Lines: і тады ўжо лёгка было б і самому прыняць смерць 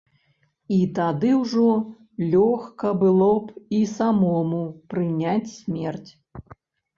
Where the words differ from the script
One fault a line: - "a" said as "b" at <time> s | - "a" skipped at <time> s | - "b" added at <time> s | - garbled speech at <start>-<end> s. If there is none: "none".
none